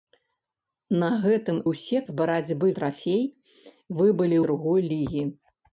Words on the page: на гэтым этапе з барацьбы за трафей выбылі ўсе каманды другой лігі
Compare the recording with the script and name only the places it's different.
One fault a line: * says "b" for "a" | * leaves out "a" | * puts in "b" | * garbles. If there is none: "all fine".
* says "ўсе" for "этапе"
* leaves out "за"
* leaves out "ўсе каманды"